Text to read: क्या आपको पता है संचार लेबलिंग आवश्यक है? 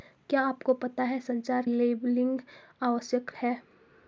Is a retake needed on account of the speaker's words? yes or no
no